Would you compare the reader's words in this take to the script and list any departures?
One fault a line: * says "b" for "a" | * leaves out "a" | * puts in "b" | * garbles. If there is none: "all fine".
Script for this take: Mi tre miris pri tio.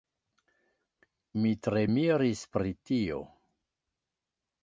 all fine